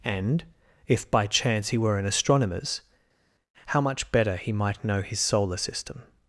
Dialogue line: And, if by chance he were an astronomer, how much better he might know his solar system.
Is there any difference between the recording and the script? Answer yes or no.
yes